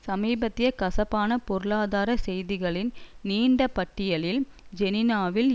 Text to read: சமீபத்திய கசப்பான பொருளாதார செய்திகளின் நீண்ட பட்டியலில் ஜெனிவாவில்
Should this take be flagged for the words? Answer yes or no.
no